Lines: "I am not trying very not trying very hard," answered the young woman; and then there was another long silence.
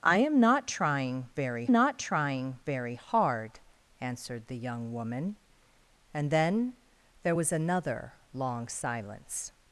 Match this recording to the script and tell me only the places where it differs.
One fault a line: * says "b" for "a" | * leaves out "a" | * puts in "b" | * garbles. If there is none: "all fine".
all fine